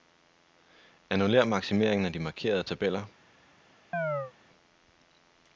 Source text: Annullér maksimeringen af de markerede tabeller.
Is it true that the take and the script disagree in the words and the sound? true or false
true